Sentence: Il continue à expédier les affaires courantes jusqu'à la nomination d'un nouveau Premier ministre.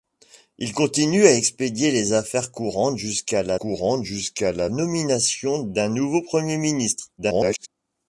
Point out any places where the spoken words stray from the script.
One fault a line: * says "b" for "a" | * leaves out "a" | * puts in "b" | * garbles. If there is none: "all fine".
* puts in "courantes jusqu'à la"
* garbles